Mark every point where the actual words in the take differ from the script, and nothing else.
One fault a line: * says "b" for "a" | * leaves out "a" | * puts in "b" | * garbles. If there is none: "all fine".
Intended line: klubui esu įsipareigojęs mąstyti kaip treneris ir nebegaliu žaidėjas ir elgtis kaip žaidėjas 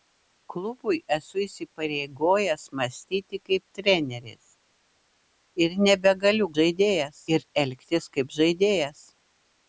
all fine